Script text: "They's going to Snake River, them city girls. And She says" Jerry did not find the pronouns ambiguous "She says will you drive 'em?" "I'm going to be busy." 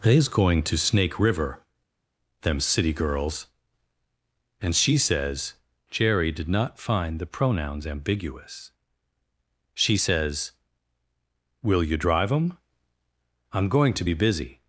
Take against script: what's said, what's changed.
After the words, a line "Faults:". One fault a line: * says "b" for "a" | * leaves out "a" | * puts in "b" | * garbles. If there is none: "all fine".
"They's going to Snake River, them city girls. And She says" Jerry did not find the pronouns ambiguous "She says will you drive 'em?" "I'm going to be busy."
Faults:
all fine